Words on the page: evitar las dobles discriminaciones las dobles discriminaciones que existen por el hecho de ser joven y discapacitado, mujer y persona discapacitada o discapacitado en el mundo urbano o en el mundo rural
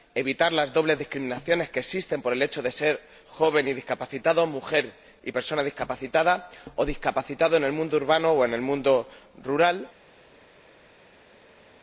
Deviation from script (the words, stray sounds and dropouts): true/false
true